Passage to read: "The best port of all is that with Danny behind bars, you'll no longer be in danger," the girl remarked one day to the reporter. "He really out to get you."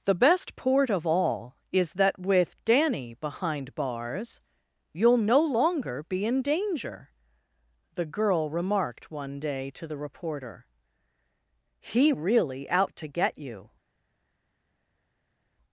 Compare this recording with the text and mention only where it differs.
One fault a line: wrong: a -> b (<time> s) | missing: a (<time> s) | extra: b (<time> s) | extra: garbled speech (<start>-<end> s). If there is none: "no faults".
no faults